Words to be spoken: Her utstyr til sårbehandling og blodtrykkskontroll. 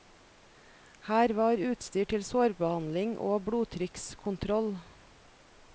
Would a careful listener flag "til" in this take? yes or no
no